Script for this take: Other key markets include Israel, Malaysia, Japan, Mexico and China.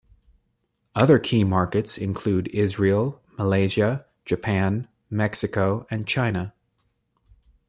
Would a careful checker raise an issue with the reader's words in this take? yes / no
no